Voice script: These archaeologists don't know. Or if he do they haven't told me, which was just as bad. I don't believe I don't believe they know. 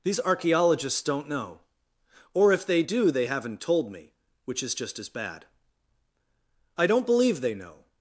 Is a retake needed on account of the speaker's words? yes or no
yes